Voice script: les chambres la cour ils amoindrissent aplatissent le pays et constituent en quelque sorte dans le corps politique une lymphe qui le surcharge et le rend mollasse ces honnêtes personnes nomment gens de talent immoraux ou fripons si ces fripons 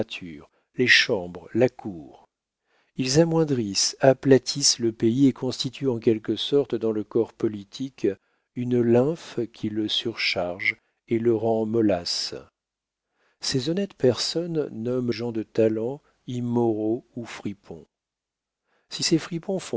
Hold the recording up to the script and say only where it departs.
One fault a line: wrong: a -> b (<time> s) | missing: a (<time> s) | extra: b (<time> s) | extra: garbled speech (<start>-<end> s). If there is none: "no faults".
no faults